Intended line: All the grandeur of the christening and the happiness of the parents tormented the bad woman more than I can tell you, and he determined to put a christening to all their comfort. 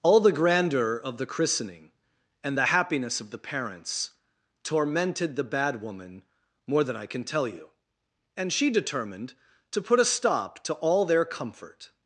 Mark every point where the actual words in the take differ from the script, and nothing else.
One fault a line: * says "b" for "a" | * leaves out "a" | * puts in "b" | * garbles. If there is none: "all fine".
* says "she" for "he"
* says "stop" for "christening"